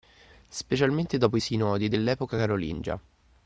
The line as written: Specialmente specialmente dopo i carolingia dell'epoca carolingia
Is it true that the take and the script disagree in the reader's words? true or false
true